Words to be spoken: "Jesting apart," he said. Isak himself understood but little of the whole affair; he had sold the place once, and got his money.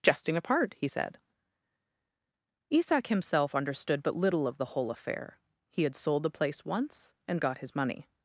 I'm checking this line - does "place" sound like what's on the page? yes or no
yes